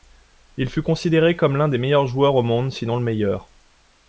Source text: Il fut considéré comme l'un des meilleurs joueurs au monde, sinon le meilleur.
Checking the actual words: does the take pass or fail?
pass